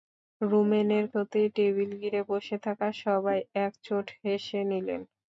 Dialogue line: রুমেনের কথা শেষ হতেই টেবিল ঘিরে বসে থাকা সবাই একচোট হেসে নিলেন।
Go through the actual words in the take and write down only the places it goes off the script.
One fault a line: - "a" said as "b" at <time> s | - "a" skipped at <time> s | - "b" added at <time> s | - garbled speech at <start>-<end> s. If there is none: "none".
- "কথা শেষ" skipped at 1.1 s